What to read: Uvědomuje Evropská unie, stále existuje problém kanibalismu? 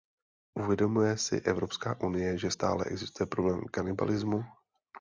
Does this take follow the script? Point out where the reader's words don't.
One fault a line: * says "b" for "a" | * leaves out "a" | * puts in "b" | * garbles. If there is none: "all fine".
* puts in "si"
* puts in "že"